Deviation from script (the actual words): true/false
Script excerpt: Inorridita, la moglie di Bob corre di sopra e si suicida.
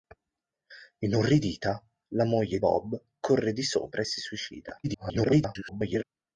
true